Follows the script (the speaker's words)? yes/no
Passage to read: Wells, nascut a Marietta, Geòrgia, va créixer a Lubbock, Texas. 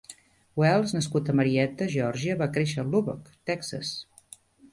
yes